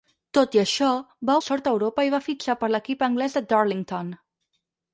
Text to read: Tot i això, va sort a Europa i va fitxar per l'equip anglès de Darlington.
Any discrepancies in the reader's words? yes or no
no